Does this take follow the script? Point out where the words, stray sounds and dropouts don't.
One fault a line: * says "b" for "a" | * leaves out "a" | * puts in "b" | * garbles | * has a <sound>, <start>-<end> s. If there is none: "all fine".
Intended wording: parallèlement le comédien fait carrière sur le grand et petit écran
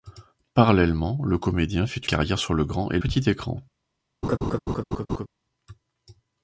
* has a laugh, 4.2-5.3 s